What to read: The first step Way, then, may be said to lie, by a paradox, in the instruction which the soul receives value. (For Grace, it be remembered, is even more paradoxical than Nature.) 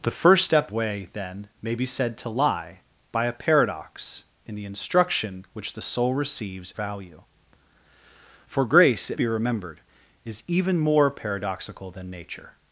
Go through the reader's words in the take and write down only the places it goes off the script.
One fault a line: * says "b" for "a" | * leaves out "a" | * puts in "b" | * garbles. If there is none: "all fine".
all fine